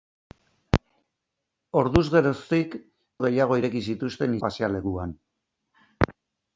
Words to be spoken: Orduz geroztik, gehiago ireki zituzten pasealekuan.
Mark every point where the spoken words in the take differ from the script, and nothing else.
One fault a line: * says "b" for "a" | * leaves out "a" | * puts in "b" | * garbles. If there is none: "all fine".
all fine